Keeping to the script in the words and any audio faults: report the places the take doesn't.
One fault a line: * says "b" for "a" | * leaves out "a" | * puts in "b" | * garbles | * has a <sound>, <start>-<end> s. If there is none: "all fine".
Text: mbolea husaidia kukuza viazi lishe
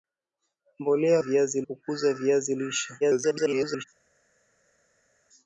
* says "viazi" for "husaidia"
* garbles